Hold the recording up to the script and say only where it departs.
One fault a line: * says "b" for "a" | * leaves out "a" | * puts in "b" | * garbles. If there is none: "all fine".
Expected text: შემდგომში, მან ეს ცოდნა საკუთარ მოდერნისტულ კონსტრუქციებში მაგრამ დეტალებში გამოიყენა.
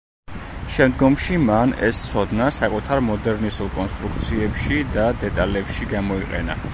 * says "და" for "მაგრამ"